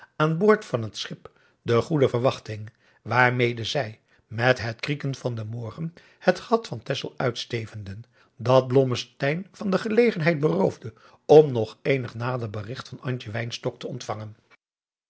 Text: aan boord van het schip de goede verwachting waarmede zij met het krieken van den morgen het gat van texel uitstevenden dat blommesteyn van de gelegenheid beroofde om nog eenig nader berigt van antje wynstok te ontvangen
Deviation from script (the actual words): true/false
false